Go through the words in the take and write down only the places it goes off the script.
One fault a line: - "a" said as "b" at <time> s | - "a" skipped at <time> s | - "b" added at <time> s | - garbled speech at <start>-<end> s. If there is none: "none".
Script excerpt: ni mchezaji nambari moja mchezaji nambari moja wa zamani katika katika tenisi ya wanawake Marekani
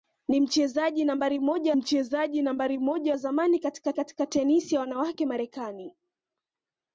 none